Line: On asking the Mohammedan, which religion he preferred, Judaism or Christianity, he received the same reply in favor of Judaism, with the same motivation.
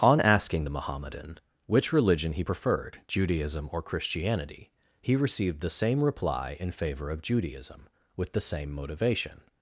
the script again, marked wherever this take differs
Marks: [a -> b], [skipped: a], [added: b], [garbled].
On asking the Mohammedan, which religion he preferred, Judaism or Christianity, he received the same reply in favor of Judaism, with the same motivation.